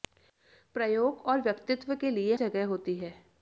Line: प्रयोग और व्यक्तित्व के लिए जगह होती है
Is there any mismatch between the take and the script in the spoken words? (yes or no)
no